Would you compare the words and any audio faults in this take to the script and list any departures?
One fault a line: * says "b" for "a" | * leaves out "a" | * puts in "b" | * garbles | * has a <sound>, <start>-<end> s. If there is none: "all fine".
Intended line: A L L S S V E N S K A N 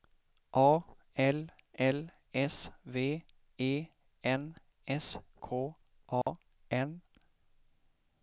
* leaves out "S"
* has a dropout, 6.2-6.3 s